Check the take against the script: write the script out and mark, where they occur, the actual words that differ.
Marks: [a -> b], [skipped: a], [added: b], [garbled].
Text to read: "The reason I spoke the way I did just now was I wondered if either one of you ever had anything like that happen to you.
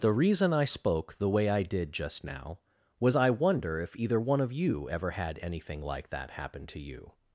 "The reason I spoke the way I did just now was I [wondered -> wonder] if either one of you ever had anything like that happen to you.